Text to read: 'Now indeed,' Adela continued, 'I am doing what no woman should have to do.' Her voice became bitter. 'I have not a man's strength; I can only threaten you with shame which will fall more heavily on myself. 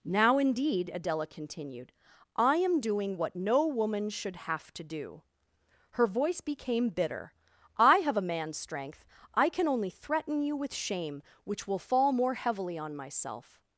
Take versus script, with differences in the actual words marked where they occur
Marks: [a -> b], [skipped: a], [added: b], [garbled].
'Now indeed,' Adela continued, 'I am doing what no woman should have to do.' Her voice became bitter. 'I have [skipped: not] a man's strength; I can only threaten you with shame which will fall more heavily on myself.